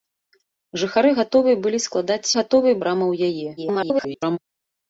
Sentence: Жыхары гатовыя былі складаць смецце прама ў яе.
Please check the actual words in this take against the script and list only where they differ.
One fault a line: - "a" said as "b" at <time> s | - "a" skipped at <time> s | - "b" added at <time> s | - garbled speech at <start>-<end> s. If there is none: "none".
- "смецце" said as "гатовыя" at 2.4 s
- garbled speech at 3.6-4.4 s